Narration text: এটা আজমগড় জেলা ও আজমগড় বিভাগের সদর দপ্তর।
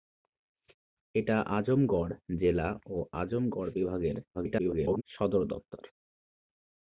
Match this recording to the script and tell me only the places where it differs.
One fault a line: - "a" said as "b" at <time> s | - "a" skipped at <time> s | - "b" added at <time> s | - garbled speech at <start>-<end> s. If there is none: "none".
- garbled speech at 4.3-5.0 s